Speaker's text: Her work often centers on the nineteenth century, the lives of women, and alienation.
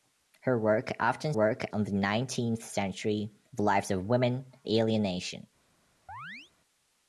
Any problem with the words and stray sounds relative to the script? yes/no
yes